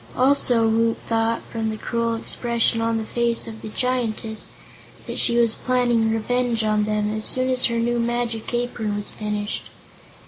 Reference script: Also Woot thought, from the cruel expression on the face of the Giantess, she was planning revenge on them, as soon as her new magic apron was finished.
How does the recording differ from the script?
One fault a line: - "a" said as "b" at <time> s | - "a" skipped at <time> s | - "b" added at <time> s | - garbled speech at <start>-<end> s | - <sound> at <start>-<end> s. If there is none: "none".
- "that" added at 5.0 s